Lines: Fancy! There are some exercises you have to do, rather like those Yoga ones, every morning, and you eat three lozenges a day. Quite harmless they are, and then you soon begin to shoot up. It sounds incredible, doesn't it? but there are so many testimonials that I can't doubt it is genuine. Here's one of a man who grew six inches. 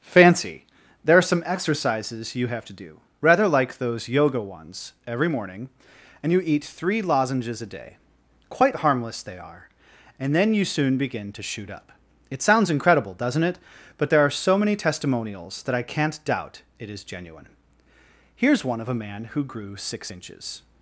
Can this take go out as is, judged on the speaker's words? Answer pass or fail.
pass